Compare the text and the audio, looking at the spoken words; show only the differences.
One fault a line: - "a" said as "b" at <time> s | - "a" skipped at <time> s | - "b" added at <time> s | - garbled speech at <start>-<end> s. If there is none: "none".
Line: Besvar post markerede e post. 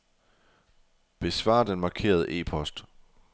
- "post" said as "den" at 1.6 s